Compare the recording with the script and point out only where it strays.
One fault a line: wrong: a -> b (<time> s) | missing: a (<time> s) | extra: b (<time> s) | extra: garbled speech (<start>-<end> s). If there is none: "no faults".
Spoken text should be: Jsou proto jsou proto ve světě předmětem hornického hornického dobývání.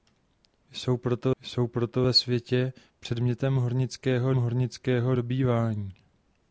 no faults